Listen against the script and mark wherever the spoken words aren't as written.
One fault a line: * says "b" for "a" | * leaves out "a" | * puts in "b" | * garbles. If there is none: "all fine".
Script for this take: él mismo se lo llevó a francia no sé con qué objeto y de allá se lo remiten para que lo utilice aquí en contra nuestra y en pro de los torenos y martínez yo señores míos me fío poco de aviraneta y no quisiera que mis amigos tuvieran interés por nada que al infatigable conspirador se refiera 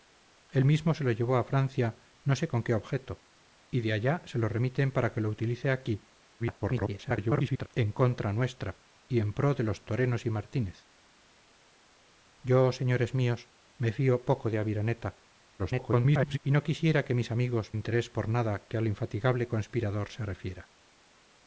* garbles
* garbles
* leaves out "tuvieran"